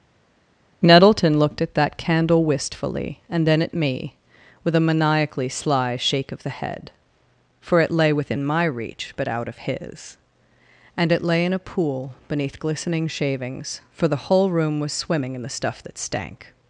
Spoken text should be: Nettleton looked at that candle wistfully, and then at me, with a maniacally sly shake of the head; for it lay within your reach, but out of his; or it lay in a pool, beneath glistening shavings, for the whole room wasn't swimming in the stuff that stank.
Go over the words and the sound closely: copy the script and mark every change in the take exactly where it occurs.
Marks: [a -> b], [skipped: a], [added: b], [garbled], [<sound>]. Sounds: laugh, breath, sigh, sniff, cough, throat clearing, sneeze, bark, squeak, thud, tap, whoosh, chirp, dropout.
Nettleton looked at that candle wistfully, and then at me, with a maniacally sly shake of the head; for it lay within [your -> my] reach, but out of his; [or -> and] it lay in a pool, beneath glistening shavings, for the whole room [wasn't -> was] swimming in the stuff that stank.